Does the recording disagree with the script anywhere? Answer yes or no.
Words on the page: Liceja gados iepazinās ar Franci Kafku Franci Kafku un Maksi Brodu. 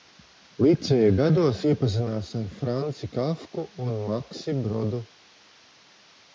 yes